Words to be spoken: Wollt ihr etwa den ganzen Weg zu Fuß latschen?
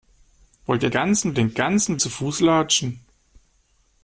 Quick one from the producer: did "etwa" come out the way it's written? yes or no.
no